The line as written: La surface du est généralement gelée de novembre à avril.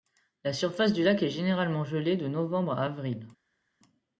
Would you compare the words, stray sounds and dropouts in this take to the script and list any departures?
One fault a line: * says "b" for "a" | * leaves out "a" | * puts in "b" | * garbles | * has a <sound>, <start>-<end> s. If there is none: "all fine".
* puts in "lac"